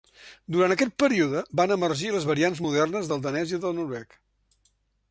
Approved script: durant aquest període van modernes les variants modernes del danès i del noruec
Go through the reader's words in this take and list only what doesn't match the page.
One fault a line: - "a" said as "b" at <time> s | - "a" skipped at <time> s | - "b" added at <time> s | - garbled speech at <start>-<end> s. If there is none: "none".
- "modernes" said as "emergir" at 1.8 s